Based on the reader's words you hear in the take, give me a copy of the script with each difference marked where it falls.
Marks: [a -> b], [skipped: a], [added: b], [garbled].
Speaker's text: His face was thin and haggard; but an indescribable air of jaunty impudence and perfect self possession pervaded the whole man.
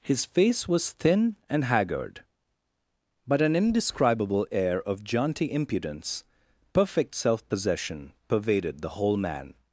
His face was thin and haggard; but an indescribable air of jaunty impudence [skipped: and] perfect self possession pervaded the whole man.